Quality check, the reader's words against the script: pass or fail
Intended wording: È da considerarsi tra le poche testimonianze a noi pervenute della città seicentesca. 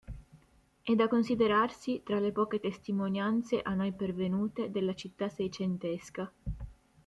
pass